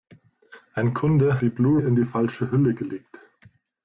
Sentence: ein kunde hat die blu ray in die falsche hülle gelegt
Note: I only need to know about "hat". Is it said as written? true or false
false